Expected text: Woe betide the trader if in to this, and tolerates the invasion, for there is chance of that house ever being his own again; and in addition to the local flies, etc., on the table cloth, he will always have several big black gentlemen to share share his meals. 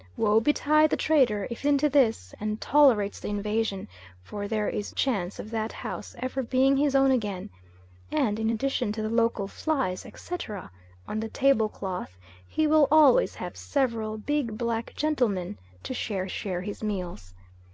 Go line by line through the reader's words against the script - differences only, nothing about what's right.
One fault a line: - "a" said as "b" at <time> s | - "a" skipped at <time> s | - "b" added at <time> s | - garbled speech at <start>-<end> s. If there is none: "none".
none